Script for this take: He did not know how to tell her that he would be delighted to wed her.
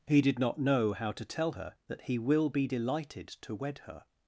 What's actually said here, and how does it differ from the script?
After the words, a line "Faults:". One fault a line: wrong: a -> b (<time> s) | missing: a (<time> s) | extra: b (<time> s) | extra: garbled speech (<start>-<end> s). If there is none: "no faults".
He did not know how to tell her that he will be delighted to wed her.
Faults:
wrong: would -> will (2.2 s)